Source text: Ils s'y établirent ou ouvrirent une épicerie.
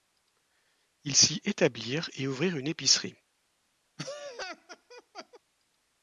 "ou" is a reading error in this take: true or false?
true